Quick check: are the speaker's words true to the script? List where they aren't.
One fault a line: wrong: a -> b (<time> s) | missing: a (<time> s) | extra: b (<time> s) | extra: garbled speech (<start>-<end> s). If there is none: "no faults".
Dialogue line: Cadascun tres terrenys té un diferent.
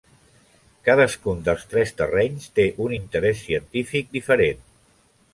extra: dels (1.5 s)
extra: interès científic (3.0 s)